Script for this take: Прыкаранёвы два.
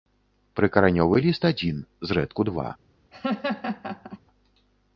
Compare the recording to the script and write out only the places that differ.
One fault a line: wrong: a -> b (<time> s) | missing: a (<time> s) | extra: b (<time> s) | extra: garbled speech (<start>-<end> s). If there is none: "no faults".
extra: ліст адзін зрэдку (1.3 s)